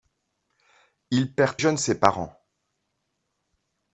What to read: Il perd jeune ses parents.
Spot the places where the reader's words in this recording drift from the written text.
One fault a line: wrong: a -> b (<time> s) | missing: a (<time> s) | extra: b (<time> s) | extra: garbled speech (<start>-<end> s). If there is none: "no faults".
no faults